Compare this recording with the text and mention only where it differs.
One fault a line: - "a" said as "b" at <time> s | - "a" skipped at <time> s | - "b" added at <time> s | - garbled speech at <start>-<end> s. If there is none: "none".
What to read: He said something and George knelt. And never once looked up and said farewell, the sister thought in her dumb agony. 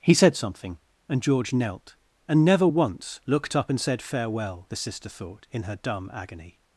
none